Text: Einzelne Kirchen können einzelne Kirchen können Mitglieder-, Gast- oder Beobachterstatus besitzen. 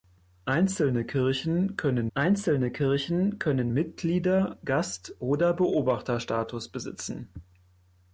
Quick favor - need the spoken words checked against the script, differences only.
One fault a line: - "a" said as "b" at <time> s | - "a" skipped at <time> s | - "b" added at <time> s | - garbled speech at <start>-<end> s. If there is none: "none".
none